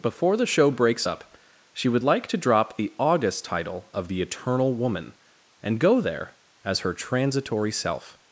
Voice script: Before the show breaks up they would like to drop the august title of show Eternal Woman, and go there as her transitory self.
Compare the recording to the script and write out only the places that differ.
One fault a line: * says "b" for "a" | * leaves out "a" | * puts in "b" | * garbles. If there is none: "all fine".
* says "she" for "they"
* says "the" for "show"